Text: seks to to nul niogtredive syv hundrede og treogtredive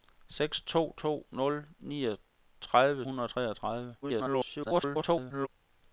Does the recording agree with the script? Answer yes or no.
no